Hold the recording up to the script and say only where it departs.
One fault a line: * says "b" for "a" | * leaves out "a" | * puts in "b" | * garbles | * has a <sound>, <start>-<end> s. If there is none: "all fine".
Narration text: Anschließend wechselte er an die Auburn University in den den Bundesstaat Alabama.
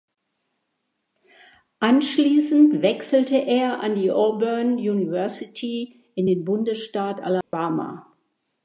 * leaves out "den"
* has a dropout, 7.4-7.5 s